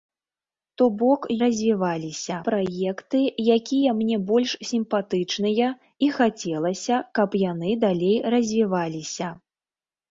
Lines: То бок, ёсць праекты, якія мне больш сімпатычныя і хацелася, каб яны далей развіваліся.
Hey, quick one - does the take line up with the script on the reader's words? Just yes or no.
no